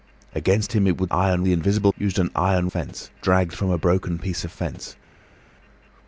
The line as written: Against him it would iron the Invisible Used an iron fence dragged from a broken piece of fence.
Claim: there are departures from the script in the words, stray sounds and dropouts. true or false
false